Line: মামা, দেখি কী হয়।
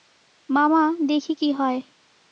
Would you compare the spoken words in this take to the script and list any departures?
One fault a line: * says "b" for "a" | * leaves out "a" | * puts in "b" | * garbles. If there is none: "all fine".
all fine